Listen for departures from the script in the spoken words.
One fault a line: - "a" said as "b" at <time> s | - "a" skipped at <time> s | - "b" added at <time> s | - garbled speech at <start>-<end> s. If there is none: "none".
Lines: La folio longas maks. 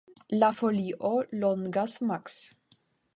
none